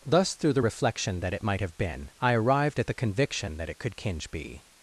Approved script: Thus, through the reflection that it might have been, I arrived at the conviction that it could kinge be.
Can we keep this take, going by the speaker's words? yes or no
yes